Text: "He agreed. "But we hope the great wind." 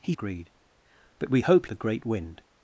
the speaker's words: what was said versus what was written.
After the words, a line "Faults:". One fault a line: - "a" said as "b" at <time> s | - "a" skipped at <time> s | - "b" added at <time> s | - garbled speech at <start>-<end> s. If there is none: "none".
"He agreed. "But we hope the great wind."
Faults:
none